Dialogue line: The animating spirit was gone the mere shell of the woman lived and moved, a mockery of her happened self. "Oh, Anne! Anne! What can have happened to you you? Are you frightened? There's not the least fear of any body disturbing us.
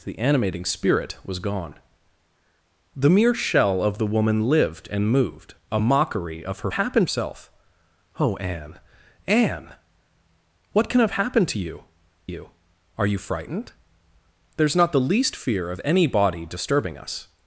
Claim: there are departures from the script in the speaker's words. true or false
false